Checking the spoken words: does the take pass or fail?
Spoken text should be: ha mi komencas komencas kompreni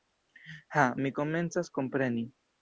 fail